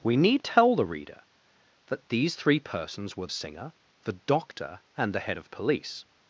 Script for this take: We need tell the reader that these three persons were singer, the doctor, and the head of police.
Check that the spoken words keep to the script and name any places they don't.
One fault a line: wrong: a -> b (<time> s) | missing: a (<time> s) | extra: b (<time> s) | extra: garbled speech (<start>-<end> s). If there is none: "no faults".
no faults